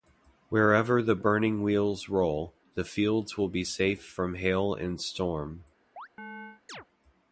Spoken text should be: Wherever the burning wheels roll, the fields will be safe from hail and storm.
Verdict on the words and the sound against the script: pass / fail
fail